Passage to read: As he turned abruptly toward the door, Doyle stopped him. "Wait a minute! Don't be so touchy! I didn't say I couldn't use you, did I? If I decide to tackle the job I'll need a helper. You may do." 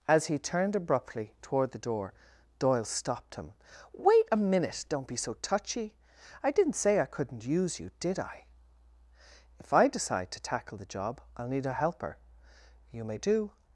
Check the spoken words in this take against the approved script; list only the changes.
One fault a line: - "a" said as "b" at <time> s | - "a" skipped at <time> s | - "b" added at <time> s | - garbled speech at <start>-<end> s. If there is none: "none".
none